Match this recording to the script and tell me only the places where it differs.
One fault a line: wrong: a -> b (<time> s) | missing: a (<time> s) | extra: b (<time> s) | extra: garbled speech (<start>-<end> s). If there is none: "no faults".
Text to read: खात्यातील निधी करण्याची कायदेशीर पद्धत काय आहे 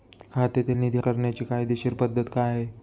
no faults